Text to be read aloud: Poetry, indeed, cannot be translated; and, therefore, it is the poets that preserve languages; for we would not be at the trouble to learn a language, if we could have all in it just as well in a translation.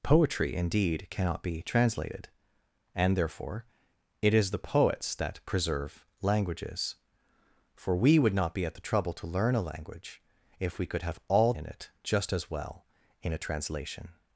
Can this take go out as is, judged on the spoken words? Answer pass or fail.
pass